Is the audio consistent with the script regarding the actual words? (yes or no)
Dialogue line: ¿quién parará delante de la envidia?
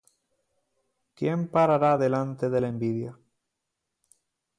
yes